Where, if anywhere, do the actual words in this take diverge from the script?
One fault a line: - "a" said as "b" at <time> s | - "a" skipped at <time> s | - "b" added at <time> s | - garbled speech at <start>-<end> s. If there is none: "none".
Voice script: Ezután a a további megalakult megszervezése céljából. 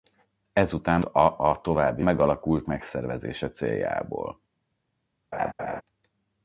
none